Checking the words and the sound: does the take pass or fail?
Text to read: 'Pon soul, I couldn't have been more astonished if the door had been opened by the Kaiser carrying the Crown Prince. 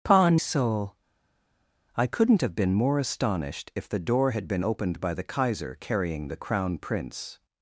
pass